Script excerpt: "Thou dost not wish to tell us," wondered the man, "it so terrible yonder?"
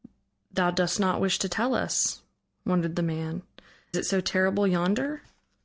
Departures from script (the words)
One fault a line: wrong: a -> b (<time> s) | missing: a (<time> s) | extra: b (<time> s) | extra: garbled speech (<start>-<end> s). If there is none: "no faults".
no faults